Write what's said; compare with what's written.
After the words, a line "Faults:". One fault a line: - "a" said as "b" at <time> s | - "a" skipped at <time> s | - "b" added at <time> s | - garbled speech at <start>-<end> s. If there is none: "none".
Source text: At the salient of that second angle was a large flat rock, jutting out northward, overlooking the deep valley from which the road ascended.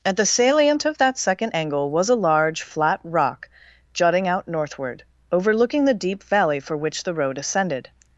At the salient of that second angle was a large flat rock, jutting out northward, overlooking the deep valley for which the road ascended.
Faults:
- "from" said as "for" at 6.6 s